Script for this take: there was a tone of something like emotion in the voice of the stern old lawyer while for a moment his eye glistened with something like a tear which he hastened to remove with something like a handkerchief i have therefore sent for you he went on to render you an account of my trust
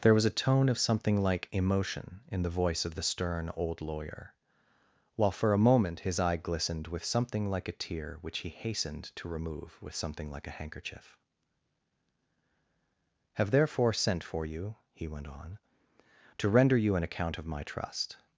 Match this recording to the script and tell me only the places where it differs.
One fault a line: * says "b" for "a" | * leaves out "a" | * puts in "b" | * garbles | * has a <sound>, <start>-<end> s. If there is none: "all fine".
* leaves out "i"